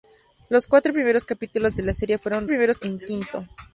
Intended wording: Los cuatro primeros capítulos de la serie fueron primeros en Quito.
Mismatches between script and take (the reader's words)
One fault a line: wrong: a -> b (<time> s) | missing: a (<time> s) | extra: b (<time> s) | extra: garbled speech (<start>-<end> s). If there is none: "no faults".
no faults